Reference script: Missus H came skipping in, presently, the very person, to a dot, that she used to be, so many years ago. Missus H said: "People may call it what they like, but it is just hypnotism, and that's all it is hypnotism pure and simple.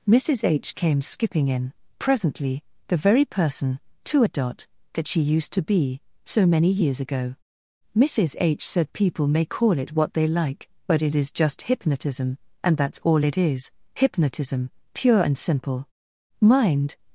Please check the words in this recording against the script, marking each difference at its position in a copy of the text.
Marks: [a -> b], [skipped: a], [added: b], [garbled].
Missus H came skipping in, presently, the very person, to a dot, that she used to be, so many years ago. Missus H said: "People may call it what they like, but it is just hypnotism, and that's all it is hypnotism pure and simple. [added: Mind]